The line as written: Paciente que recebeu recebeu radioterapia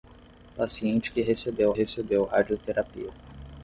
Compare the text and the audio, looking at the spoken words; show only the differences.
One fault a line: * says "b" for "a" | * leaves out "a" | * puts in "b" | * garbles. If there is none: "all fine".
all fine